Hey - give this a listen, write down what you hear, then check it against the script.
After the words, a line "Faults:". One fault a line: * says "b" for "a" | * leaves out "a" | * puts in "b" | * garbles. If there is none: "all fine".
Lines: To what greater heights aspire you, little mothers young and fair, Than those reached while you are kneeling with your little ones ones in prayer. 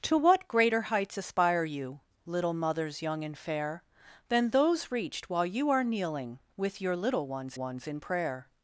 To what greater heights aspire you, little mothers young and fair, Than those reached while you are kneeling with your little ones ones in prayer.
Faults:
all fine